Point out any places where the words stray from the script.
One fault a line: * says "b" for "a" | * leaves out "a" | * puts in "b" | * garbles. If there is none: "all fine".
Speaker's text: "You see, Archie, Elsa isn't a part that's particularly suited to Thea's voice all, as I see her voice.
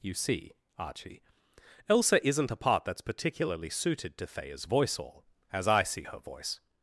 all fine